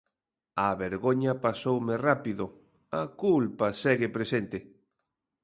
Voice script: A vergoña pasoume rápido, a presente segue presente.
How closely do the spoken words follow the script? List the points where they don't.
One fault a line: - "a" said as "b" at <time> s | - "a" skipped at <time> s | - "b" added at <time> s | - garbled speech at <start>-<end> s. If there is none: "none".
- "presente" said as "culpa" at 3.2 s